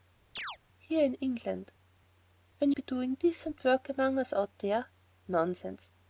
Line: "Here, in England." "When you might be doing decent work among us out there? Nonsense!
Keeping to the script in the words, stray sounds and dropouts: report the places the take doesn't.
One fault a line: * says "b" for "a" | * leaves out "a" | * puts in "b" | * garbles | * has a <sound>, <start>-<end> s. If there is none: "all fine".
* has a chirp, 0.4-0.6 s
* leaves out "you might"